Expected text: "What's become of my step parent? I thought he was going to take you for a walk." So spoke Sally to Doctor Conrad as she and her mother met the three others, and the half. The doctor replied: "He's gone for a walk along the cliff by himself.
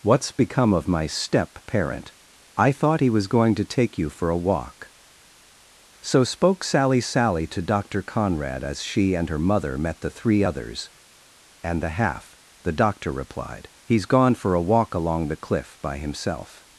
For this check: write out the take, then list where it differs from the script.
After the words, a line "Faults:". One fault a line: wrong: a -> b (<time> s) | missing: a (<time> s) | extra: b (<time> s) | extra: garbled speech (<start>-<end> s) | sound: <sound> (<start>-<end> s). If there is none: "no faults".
"What's become of my step parent? I thought he was going to take you for a walk." So spoke Sally Sally to Doctor Conrad as she and her mother met the three others, and the half. The doctor replied: "He's gone for a walk along the cliff by himself.
Faults:
extra: Sally (7.0 s)